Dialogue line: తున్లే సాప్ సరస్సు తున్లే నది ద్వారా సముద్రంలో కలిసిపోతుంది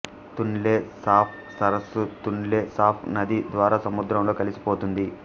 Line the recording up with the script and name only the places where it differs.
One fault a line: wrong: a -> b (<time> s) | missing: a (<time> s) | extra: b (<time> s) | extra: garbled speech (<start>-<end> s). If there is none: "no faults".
extra: సాప్ (2.7 s)